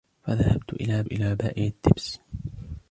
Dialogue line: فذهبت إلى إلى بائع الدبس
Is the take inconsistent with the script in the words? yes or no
no